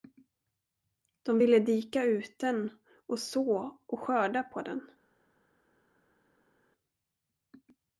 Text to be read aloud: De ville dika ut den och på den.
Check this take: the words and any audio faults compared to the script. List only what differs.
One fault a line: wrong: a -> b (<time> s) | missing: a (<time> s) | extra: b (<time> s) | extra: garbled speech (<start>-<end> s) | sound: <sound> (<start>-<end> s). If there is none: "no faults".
extra: så och skörda (3.2 s)